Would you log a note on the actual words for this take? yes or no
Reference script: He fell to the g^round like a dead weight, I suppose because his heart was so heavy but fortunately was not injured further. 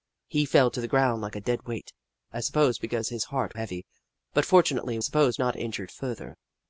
yes